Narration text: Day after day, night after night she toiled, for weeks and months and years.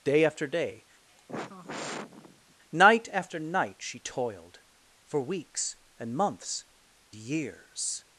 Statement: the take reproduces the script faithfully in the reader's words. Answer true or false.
false